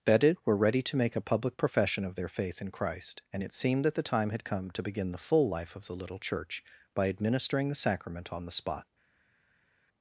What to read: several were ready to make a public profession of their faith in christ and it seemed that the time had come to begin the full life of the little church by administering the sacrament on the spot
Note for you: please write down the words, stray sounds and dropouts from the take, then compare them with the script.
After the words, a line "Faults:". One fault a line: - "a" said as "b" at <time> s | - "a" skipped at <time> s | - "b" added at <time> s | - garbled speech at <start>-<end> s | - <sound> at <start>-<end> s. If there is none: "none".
bedded were ready to make a public profession of their faith in christ and it seemed that the time had come to begin the full life of the little church by administering the sacrament on the spot
Faults:
- "several" said as "bedded" at 0.0 s